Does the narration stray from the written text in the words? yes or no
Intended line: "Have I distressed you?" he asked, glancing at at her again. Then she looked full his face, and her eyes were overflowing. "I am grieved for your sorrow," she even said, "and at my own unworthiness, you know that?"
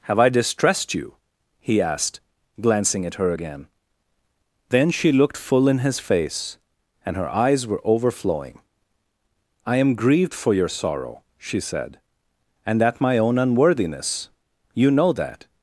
yes